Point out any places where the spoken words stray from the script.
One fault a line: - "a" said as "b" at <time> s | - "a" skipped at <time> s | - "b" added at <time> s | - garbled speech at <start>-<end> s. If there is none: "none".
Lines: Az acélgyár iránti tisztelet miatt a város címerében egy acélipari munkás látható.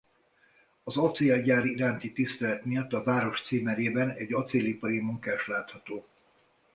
none